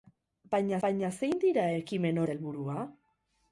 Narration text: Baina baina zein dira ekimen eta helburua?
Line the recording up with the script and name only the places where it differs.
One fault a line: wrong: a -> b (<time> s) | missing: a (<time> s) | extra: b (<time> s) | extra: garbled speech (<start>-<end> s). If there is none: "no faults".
no faults